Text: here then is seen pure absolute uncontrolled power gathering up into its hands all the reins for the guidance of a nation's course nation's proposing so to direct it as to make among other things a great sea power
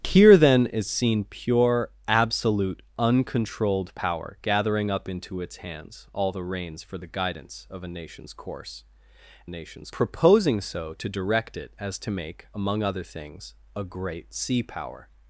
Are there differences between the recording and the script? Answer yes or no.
no